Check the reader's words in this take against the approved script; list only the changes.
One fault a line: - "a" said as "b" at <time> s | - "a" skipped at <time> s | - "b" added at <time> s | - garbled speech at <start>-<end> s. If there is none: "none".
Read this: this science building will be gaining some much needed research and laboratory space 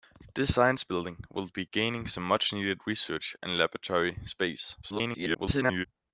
- garbled speech at 4.8-5.9 s